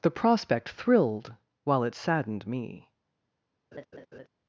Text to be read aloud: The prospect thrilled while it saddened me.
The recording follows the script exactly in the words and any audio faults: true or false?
false